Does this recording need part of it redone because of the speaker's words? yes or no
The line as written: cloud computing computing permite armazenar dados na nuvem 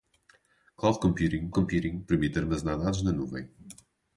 no